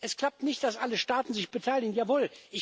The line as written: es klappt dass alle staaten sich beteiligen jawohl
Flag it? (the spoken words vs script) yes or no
yes